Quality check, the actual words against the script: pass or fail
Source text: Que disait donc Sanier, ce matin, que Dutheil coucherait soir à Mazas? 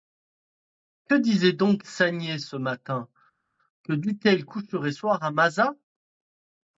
pass